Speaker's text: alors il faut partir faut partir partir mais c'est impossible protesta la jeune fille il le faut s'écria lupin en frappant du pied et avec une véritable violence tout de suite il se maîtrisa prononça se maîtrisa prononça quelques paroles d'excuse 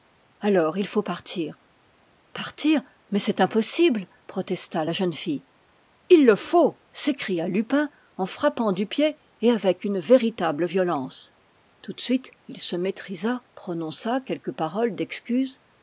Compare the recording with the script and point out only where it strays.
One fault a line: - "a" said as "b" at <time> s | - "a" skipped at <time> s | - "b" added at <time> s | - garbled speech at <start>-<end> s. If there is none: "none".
- "faut" skipped at 1.6 s
- "partir" skipped at 2.8 s
- "se maîtrisa prononça" skipped at 14.2 s